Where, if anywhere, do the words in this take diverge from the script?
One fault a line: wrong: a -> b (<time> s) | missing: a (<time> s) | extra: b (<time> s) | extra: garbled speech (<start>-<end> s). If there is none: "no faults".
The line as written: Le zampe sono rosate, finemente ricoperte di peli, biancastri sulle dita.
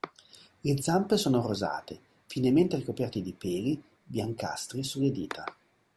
no faults